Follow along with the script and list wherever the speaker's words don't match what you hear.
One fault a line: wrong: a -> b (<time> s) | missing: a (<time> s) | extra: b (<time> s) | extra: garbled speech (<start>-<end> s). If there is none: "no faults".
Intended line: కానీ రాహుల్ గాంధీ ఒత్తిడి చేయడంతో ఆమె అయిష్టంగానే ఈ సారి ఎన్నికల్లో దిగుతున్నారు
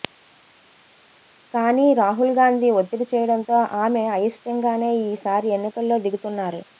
no faults